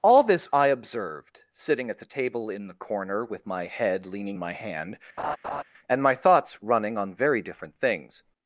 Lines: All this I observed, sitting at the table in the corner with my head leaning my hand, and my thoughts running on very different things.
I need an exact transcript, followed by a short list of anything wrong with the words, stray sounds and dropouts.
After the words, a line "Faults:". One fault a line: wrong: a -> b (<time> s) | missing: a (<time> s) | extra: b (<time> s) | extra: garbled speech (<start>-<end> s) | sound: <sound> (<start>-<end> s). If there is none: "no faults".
All this I observed, sitting at the table in the corner with my head leaning my hand, and my thoughts running on very different things.
Faults:
sound: laugh (5.2-5.6 s)